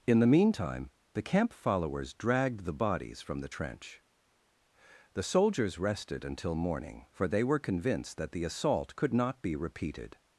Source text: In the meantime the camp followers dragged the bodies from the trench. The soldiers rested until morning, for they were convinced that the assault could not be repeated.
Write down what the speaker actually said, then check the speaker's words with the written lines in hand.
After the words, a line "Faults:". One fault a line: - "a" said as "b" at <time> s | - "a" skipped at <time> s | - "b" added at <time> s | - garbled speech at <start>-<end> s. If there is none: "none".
In the meantime the camp followers dragged the bodies from the trench. The soldiers rested until morning, for they were convinced that the assault could not be repeated.
Faults:
none